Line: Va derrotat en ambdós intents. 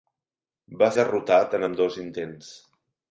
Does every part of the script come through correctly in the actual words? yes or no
yes